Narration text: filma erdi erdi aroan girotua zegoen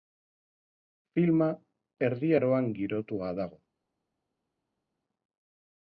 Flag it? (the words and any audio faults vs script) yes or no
yes